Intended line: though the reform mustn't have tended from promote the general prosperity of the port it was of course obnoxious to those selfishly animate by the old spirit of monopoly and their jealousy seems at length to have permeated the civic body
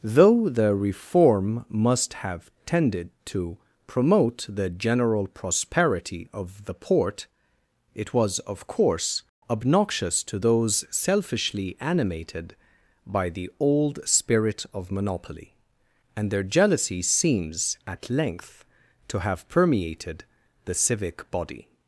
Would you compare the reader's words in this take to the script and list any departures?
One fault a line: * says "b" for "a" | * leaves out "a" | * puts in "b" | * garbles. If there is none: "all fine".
* says "must" for "mustn't"
* says "to" for "from"
* says "animated" for "animate"